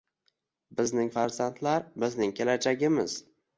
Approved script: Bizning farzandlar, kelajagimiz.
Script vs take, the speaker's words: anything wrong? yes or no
yes